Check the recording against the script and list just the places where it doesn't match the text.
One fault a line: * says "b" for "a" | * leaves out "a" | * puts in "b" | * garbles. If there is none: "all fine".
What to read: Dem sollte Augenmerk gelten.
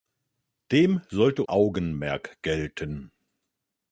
all fine